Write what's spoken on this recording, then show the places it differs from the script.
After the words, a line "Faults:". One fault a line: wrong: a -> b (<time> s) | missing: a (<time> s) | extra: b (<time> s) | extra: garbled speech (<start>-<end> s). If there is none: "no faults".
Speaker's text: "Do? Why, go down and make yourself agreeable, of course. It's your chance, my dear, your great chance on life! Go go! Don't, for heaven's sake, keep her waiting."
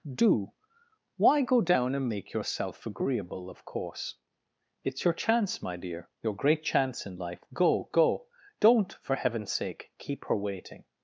"Do? Why, go down and make yourself agreeable, of course. It's your chance, my dear, your great chance in life! Go go! Don't, for heaven's sake, keep her waiting."
Faults:
wrong: on -> in (7.0 s)